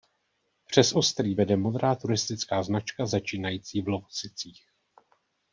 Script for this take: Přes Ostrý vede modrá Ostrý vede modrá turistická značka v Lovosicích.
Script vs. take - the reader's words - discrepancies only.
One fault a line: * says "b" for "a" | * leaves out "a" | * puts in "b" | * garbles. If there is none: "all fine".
* leaves out "Ostrý vede modrá"
* puts in "začínající"